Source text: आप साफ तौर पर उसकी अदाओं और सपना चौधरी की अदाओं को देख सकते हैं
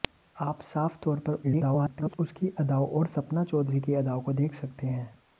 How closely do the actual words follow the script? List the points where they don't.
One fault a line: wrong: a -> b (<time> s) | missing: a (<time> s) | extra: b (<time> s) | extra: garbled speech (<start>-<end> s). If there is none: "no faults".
extra: garbled speech (1.4-2.2 s)